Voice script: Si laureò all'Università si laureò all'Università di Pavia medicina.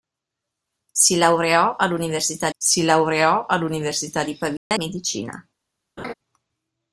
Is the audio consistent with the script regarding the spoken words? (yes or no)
yes